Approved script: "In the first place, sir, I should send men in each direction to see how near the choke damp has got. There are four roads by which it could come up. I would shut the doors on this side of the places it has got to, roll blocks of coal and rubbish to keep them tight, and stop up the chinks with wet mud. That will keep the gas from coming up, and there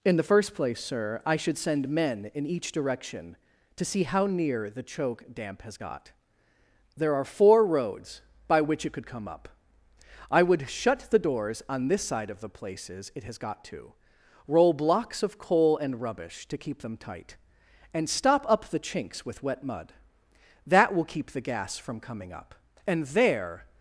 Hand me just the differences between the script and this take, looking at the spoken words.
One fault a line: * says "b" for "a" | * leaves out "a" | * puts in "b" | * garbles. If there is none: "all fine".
all fine